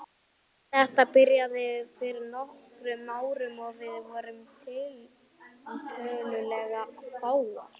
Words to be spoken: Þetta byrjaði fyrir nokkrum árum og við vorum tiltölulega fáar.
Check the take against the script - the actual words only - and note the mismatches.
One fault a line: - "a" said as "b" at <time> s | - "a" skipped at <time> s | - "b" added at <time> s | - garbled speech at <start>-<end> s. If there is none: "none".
none